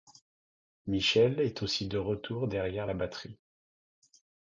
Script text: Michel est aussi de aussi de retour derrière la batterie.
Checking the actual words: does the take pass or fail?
fail